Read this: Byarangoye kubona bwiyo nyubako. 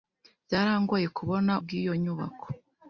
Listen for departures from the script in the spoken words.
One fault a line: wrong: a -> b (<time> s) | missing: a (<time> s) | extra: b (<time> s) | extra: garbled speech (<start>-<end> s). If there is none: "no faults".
no faults